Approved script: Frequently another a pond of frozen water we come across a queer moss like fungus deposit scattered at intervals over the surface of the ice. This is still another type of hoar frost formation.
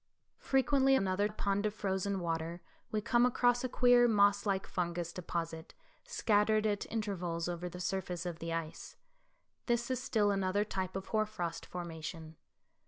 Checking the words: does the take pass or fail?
pass